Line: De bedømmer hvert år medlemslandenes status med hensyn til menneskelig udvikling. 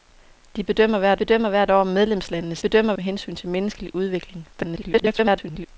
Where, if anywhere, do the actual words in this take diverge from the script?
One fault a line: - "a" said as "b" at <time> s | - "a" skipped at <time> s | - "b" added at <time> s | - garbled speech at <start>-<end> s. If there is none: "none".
- "bedømmer hvert" added at 1.1 s
- "status" said as "bedømmer" at 2.6 s
- garbled speech at 4.5-5.7 s